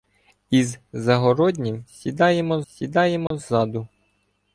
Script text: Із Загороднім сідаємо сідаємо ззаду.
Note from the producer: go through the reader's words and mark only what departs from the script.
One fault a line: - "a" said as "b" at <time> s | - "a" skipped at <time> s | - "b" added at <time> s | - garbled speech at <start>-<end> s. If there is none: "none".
none